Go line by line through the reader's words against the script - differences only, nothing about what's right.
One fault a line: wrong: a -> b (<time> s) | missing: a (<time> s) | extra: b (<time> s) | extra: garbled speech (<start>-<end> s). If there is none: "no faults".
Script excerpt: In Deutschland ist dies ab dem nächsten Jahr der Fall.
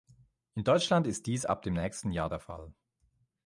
no faults